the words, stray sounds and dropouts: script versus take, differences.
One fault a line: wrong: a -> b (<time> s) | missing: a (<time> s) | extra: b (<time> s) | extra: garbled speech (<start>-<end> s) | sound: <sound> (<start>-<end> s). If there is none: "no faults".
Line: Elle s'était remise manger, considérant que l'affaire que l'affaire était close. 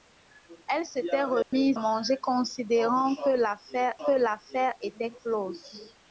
sound: dropout (1.4-1.5 s)